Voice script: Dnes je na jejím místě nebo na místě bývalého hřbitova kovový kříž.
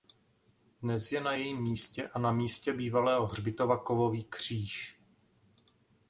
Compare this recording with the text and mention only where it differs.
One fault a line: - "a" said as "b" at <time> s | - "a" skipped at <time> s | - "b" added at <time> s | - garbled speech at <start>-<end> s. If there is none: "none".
- "nebo" said as "a" at 2.1 s